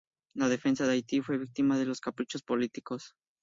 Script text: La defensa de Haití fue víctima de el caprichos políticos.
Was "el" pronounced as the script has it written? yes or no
no